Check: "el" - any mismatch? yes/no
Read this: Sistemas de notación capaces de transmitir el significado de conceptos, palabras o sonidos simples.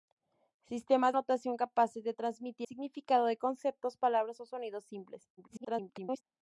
yes